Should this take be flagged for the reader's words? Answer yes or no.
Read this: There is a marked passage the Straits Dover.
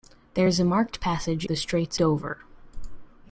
no